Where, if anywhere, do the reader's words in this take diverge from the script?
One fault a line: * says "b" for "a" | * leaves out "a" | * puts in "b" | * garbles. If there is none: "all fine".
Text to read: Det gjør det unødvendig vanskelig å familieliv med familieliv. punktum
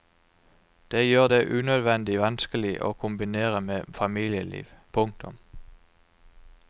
* says "kombinere" for "familieliv"